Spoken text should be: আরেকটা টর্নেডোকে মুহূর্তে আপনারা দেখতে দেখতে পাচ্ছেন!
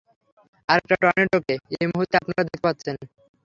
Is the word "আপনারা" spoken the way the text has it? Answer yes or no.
yes